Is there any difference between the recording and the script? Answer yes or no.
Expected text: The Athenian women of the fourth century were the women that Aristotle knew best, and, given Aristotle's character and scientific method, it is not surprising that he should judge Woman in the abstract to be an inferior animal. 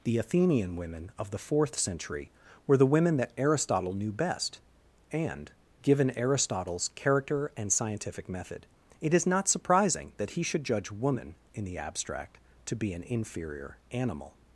no